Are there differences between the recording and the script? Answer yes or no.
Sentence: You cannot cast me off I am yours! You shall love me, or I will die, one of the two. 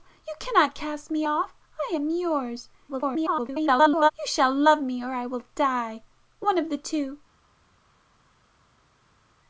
yes